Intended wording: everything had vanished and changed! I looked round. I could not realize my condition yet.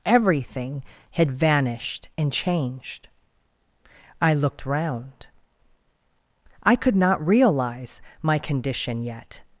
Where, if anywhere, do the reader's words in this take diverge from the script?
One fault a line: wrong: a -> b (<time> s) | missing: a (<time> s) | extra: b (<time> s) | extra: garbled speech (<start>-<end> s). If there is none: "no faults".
no faults